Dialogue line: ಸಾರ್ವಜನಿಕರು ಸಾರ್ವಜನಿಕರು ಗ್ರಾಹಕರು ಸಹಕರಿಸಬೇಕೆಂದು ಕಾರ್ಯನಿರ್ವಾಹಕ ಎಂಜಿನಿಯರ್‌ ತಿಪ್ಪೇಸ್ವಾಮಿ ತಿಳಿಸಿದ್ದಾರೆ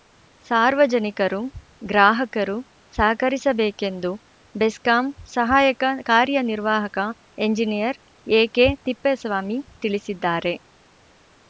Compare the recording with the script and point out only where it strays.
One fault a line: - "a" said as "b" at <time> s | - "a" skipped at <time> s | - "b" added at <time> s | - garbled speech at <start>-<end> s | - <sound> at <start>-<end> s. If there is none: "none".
- "ಸಾರ್ವಜನಿಕರು" skipped at 1.4 s
- "ಬೆಸ್ಕಾಂ ಸಹಾಯಕ" added at 4.5 s
- "ಎಕೆ" added at 8.3 s